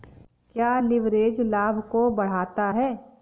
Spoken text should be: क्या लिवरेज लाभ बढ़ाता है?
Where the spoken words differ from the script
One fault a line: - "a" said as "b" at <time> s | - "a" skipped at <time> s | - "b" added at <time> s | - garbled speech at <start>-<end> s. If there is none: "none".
- "को" added at 1.9 s